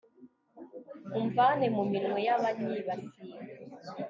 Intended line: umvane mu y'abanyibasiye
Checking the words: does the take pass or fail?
fail